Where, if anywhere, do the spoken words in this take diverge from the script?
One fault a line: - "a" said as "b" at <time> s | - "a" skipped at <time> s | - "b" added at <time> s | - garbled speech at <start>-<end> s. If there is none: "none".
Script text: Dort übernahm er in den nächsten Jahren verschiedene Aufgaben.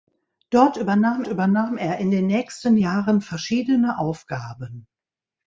- "übernahm" added at 1.3 s